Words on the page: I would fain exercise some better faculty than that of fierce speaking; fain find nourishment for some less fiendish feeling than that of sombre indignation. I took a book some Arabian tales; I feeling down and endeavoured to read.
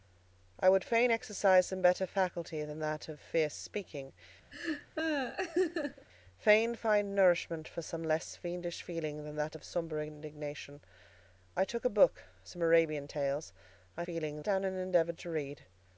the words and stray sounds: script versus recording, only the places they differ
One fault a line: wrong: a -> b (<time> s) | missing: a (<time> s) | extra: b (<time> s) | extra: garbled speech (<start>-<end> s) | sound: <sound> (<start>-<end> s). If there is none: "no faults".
sound: laugh (4.5-6.1 s)